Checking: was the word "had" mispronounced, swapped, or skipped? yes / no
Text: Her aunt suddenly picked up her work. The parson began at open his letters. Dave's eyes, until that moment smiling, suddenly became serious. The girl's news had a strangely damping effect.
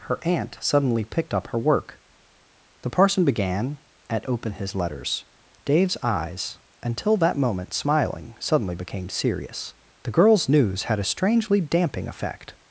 no